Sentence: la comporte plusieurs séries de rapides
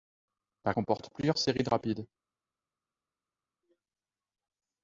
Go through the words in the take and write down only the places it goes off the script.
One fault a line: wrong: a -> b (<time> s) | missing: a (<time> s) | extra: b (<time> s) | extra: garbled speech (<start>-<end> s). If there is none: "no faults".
no faults